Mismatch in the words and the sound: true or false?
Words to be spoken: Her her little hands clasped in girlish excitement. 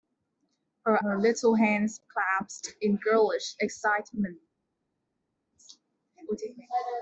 false